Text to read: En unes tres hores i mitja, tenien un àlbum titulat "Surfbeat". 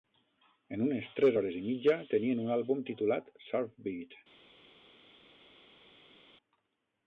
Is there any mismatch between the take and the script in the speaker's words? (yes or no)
no